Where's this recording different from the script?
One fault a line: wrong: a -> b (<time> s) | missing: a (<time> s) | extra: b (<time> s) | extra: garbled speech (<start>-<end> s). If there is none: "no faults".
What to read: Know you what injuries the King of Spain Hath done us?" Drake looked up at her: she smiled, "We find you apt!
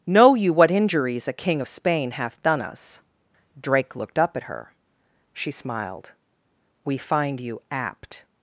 wrong: the -> a (1.3 s)